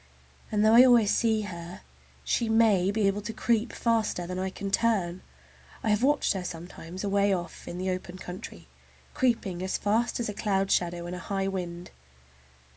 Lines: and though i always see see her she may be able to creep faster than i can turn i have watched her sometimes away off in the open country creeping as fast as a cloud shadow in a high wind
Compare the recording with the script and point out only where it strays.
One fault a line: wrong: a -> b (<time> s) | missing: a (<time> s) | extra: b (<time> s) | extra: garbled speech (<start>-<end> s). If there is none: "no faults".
missing: see (1.4 s)